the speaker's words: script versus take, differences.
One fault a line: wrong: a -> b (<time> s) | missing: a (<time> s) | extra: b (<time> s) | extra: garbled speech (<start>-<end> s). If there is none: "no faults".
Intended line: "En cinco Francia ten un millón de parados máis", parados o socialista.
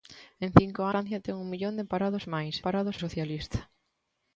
no faults